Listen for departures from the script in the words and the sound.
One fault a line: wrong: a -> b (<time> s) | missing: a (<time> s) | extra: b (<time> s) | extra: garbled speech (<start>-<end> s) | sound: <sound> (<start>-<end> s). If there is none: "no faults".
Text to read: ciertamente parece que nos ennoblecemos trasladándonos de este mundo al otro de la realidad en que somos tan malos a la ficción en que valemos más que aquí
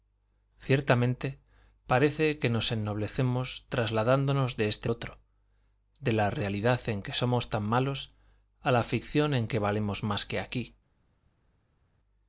missing: mundo al (4.9 s)